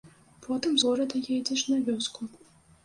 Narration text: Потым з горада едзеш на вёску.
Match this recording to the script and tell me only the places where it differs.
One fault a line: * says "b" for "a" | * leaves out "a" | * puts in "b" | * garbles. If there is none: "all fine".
all fine